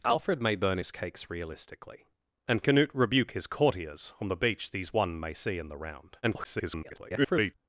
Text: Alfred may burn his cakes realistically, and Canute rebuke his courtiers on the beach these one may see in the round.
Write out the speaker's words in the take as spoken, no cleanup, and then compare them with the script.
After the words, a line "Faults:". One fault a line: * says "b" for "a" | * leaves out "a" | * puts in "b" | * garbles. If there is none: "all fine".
Alfred may burn his cakes realistically, and Canute rebuke his courtiers on the beach these one may see in the round. [garbled]
Faults:
* garbles